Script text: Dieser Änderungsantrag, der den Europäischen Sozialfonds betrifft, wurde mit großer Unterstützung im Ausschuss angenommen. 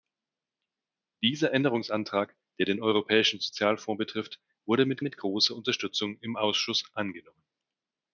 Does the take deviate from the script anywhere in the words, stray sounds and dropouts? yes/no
yes